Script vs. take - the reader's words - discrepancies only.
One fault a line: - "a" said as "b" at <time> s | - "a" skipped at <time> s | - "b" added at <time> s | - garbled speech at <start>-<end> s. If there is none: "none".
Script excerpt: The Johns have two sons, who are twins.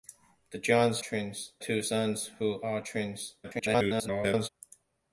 - "have" said as "twins" at 1.0 s
- garbled speech at 3.4-4.5 s